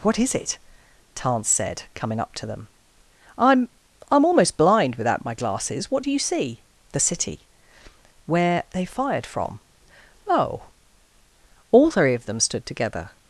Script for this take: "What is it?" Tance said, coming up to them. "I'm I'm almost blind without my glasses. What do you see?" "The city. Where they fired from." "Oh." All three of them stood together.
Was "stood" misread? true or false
false